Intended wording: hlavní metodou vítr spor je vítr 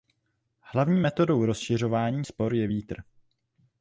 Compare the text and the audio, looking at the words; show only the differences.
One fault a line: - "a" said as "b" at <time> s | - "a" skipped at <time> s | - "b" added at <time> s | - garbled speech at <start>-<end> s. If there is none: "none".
- "vítr" said as "rozšiřování" at 1.5 s